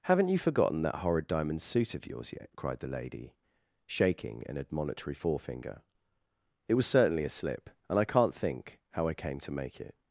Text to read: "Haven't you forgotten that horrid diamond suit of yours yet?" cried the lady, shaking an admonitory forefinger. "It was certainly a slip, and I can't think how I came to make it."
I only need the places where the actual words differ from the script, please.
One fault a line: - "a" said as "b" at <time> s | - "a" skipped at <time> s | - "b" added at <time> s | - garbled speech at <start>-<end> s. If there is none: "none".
none